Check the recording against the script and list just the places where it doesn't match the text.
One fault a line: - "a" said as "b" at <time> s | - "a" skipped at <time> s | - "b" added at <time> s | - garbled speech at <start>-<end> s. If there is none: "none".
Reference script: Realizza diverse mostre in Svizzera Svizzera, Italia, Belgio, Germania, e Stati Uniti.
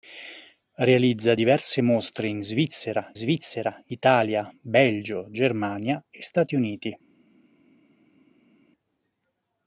none